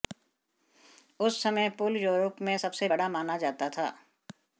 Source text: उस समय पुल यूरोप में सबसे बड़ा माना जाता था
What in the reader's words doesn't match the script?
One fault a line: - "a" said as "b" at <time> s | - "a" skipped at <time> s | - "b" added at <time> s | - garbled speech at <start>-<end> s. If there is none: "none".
none